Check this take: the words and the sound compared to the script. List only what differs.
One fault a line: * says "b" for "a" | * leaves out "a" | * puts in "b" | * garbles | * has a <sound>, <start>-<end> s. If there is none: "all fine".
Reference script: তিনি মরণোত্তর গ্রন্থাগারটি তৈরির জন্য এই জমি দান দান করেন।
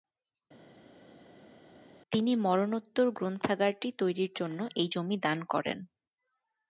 * leaves out "দান"